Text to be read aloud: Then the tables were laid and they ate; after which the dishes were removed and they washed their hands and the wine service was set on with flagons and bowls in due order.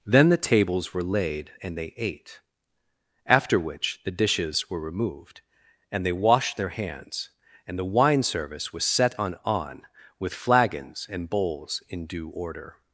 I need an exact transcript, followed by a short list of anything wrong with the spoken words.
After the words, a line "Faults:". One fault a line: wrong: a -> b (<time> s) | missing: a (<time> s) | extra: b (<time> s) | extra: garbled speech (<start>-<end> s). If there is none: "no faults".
Then the tables were laid and they ate; after which the dishes were removed and they washed their hands and the wine service was set on on with flagons and bowls in due order.
Faults:
extra: on (9.4 s)